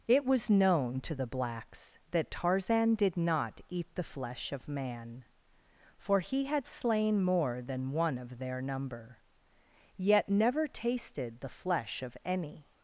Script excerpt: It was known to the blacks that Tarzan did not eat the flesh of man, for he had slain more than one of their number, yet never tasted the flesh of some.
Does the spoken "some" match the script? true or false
false